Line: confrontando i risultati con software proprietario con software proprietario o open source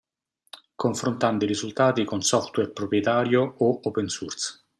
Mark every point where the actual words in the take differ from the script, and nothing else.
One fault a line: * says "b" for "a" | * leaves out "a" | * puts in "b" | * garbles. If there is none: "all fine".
* leaves out "con software proprietario"